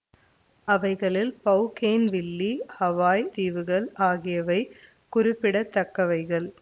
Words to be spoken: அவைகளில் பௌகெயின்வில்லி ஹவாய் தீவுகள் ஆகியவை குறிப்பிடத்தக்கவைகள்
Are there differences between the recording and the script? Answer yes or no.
no